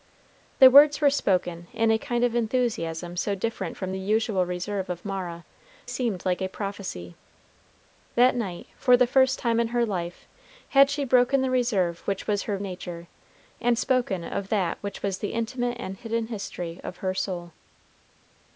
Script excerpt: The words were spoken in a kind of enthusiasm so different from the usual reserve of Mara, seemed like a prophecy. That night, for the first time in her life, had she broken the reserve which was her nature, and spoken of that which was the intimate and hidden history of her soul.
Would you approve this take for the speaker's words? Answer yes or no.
yes